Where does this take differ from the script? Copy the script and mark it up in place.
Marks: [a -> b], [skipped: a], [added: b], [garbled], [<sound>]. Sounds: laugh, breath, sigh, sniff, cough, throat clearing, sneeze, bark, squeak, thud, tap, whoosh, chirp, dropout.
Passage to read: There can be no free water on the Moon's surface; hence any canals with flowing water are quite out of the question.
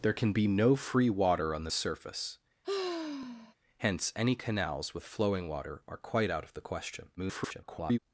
There can be no free water on the [skipped: Moon's] surface; [sigh] hence any canals with flowing water are quite out of the question. [garbled]